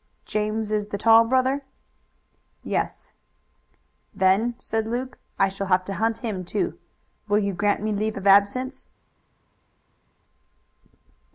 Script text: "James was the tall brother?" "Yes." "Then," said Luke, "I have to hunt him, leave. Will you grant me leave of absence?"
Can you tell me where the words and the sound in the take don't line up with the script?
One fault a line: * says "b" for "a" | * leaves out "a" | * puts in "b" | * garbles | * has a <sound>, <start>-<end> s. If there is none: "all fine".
* says "is" for "was"
* puts in "shall"
* says "too" for "leave"